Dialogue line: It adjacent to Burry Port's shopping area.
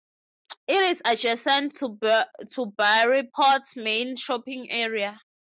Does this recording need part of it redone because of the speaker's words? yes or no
yes